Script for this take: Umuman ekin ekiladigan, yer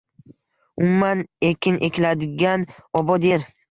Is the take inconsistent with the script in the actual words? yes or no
yes